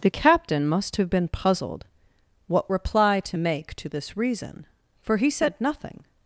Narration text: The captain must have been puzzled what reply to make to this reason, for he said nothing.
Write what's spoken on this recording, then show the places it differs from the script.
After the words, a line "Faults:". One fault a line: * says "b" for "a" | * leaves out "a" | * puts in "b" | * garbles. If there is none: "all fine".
The captain must have been puzzled what reply to make to this reason, for he said nothing.
Faults:
all fine